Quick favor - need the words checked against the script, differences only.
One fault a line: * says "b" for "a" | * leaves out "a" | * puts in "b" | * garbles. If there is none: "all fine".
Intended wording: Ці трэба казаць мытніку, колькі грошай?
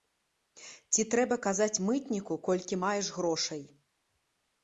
* puts in "маеш"